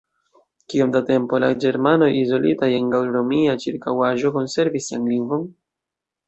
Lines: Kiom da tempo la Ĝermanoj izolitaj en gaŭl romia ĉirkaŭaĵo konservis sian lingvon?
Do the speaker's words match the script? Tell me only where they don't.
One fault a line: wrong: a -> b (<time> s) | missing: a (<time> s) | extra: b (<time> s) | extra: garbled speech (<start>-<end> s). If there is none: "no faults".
no faults